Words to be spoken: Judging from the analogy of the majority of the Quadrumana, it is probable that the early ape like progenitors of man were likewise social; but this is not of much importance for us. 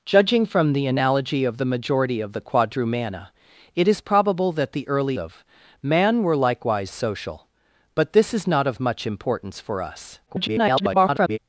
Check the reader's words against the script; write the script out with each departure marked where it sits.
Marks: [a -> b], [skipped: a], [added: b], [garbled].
Judging from the analogy of the majority of the Quadrumana, it is probable that the early [skipped: ape like progenitors] of man were likewise social; but this is not of much importance for us. [garbled]